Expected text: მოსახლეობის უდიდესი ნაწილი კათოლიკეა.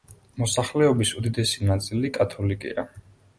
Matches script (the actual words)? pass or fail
pass